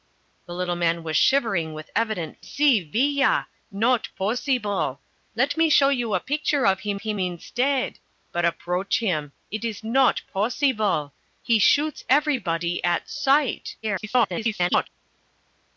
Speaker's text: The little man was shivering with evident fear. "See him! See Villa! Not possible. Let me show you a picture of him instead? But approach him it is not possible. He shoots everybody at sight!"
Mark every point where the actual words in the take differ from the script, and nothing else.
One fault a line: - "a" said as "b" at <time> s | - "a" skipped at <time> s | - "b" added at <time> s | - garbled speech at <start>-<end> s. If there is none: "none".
- "fear" skipped at 2.4 s
- "him See" skipped at 2.8 s
- "him" added at 7.0 s
- garbled speech at 13.8-14.9 s